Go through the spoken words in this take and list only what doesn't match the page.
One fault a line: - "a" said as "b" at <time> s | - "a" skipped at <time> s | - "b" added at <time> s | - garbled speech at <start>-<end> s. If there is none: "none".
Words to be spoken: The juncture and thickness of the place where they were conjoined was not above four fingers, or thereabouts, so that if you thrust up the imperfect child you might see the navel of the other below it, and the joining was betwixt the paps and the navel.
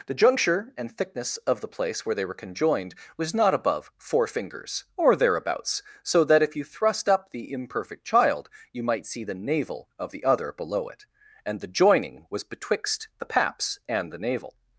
none